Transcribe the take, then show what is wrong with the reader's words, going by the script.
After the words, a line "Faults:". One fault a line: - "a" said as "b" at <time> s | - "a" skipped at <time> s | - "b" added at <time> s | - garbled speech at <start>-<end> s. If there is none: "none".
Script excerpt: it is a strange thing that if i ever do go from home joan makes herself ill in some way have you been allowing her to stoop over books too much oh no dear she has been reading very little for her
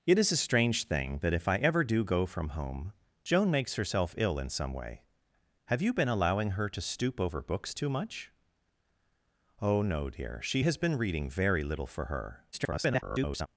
it is a strange thing that if i ever do go from home joan makes herself ill in some way have you been allowing her to stoop over books too much oh no dear she has been reading very little for her [garbled]
Faults:
- garbled speech at 12.5-13.5 s